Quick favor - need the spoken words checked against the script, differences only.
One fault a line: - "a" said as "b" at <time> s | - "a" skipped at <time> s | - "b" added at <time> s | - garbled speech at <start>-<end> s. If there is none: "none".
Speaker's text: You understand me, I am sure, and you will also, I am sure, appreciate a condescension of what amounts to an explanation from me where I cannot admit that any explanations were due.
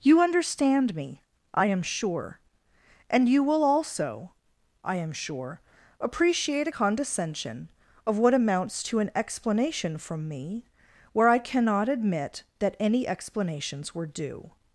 none